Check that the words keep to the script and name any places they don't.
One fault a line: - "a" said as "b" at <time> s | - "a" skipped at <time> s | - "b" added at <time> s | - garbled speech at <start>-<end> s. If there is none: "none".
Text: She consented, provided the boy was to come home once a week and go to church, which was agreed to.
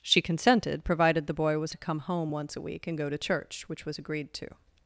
none